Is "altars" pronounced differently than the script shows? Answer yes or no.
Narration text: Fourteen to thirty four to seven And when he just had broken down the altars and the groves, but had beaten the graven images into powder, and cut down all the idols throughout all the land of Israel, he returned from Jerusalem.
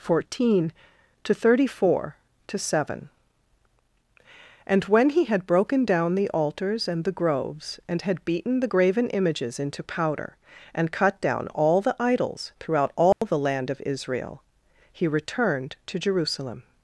no